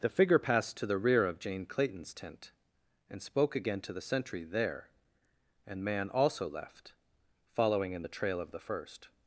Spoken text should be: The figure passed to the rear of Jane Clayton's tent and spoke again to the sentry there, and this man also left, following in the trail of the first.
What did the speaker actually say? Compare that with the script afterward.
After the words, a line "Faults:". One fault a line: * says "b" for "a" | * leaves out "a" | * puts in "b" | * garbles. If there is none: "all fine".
The figure passed to the rear of Jane Clayton's tent and spoke again to the sentry there, and man also left, following in the trail of the first.
Faults:
* leaves out "this"